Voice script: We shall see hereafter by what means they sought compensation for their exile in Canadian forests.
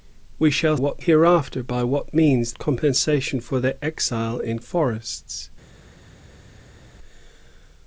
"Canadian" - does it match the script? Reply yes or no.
no